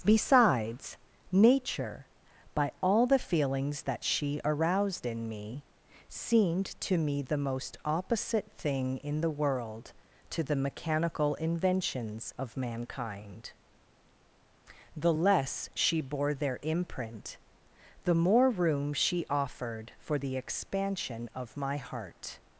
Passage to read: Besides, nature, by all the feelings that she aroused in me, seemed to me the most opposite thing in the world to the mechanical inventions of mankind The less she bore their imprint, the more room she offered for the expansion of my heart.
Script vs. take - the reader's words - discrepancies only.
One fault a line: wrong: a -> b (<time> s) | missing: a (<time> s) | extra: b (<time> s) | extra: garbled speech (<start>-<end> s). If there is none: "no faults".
no faults